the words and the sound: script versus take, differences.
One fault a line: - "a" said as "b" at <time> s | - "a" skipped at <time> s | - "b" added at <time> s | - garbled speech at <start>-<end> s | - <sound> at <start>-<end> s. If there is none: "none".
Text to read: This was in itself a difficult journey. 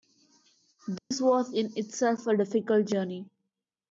- dropout at 1.0-1.1 s